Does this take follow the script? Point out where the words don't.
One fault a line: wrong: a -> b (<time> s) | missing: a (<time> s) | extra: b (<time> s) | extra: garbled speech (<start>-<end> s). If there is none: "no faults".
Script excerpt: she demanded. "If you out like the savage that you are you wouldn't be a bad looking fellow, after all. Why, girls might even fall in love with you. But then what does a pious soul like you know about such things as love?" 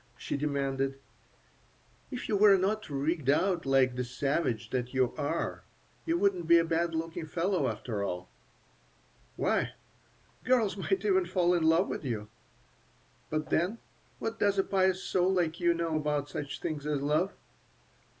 extra: were not rigged (2.4 s)